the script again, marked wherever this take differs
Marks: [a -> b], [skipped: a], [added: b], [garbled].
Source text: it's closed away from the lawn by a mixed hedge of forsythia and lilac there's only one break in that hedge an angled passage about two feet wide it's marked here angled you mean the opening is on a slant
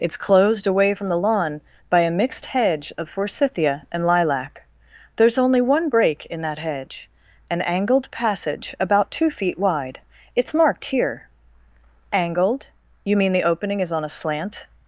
it's closed away from the lawn by a mixed hedge of forsythia and lilac there's only one break in that hedge an angled passage about two feet wide it's marked here angled you mean the opening is on a slant